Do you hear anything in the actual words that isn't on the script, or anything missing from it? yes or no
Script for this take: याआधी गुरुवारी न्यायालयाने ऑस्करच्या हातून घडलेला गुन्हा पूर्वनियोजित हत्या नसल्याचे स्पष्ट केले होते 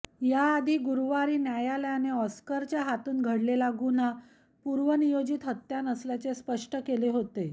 no